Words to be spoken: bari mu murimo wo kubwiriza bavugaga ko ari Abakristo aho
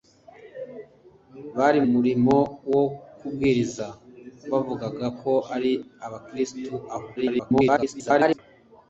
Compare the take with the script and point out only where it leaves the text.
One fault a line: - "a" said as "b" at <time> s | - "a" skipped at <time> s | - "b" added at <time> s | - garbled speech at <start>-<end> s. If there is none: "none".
- "mu" skipped at 1.8 s
- garbled speech at 7.2-8.4 s